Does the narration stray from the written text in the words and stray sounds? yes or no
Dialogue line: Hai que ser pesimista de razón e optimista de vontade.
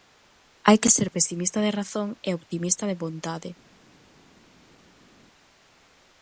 no